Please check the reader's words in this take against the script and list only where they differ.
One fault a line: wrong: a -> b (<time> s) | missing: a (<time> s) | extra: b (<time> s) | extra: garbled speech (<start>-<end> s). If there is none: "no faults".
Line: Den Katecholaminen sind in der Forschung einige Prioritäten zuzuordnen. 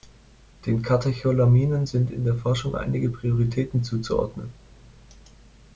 no faults